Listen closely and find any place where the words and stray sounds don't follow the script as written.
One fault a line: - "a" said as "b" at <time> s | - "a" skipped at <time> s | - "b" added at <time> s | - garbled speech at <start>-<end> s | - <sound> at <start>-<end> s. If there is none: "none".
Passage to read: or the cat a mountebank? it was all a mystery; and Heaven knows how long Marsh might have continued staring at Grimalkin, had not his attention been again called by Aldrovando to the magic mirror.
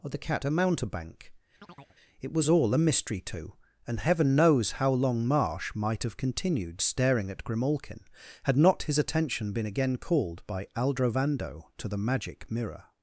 - chirp at 1.6-2.0 s
- "to" added at 3.2 s